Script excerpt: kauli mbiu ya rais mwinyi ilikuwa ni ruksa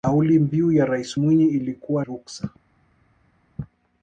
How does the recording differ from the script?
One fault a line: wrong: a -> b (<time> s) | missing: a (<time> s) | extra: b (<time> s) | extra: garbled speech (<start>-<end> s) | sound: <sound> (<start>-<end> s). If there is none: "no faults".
missing: ni (2.0 s)